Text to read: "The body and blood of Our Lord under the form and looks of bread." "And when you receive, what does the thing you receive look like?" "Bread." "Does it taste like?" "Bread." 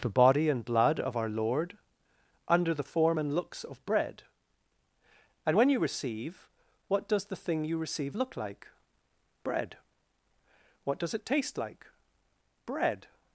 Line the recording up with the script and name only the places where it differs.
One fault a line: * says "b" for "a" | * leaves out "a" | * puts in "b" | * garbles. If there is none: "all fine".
* puts in "What"